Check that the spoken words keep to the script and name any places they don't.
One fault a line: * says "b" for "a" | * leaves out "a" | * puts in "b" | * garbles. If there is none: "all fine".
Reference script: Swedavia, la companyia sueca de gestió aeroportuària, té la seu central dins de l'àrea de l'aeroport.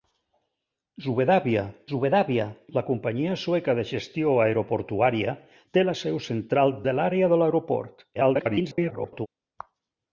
* puts in "swedavia"
* leaves out "dins"
* garbles